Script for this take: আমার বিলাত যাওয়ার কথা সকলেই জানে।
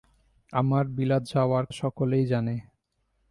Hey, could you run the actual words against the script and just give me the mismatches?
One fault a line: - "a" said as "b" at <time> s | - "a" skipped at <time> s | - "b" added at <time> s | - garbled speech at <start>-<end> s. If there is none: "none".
- "কথা" skipped at 1.6 s